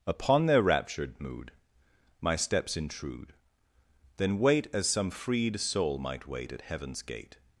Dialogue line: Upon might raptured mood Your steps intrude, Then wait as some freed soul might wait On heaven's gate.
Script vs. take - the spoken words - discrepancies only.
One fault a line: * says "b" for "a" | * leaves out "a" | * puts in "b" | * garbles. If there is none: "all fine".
* says "their" for "might"
* says "My" for "Your"
* says "At" for "On"